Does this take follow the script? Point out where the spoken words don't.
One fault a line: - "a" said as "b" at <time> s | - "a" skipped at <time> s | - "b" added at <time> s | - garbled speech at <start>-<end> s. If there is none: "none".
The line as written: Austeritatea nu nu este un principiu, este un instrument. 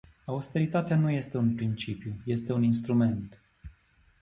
- "nu" skipped at 1.1 s